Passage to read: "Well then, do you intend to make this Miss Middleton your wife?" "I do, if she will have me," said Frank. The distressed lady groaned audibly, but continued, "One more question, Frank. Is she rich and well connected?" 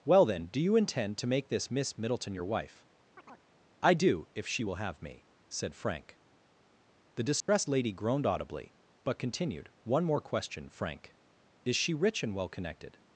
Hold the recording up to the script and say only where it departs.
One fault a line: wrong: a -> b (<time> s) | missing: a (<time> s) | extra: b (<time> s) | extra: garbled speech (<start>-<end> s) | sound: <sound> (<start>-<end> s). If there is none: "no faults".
sound: chirp (3.2-3.5 s)
sound: dropout (7.4-7.5 s)